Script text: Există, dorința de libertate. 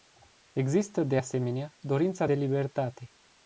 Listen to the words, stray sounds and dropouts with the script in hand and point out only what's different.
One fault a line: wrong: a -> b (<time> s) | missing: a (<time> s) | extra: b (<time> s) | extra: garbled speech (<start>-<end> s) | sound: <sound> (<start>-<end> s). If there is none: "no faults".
extra: de asemenea (1.0 s)